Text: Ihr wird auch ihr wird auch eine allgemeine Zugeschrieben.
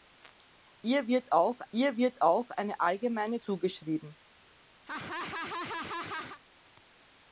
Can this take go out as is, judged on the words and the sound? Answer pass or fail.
fail